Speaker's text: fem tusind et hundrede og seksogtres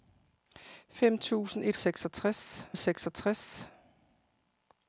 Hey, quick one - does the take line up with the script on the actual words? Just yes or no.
no